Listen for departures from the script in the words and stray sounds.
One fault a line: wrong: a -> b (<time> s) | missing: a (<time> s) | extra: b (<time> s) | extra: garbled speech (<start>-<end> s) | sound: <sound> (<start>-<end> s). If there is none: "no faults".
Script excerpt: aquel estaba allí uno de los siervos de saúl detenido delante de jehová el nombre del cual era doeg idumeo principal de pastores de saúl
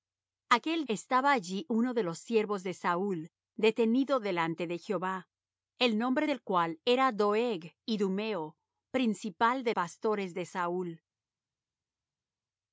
no faults